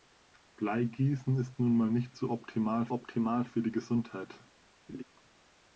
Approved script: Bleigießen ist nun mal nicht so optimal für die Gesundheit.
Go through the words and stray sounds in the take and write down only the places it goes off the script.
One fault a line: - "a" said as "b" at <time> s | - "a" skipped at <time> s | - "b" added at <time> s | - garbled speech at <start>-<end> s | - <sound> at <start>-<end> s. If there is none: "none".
- "optimal" added at 2.9 s
- laugh at 4.9-5.0 s